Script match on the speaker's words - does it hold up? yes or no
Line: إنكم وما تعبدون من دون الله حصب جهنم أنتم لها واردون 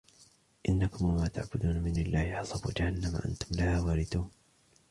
no